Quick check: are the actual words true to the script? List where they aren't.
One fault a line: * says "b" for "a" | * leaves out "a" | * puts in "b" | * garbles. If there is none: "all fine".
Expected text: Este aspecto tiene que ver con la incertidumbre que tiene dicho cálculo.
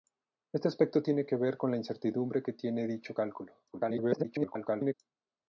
* garbles